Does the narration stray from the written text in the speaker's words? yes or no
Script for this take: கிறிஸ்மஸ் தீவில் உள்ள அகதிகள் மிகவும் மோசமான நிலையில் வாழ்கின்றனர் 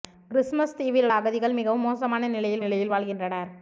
yes